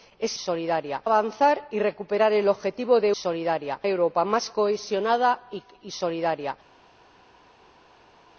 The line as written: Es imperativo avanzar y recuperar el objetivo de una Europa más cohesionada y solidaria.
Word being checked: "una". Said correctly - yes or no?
no